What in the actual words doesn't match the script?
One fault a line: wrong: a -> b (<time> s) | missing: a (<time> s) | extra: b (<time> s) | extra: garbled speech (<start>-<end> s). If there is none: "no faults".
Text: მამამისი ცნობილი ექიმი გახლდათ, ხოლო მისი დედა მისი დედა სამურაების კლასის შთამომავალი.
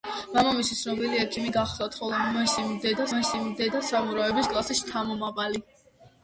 no faults